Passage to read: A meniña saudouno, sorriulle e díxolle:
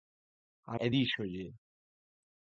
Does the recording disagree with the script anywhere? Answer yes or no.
yes